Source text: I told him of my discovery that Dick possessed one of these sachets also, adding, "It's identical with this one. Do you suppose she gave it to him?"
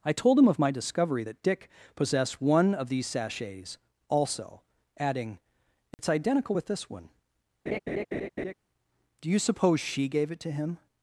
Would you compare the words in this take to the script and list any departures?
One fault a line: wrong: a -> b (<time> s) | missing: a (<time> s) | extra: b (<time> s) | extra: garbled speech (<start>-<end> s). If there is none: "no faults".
no faults